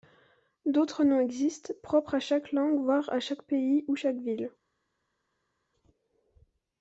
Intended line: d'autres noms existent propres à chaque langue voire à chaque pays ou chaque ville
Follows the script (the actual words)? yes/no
yes